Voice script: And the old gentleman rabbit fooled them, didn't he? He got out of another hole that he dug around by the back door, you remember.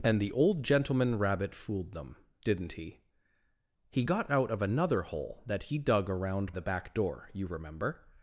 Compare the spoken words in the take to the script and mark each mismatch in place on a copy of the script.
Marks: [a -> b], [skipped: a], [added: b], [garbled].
And the old gentleman rabbit fooled them, didn't he? He got out of another hole that he dug around [skipped: by] the back door, you remember.